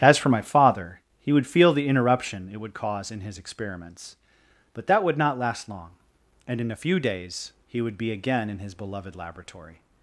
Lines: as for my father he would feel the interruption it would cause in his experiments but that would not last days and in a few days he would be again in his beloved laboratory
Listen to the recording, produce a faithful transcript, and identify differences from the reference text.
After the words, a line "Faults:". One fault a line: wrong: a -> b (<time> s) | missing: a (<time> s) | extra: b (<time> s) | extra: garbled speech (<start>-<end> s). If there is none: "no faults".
as for my father he would feel the interruption it would cause in his experiments but that would not last long and in a few days he would be again in his beloved laboratory
Faults:
wrong: days -> long (5.7 s)